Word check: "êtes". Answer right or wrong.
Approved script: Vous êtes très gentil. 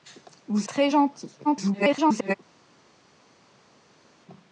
wrong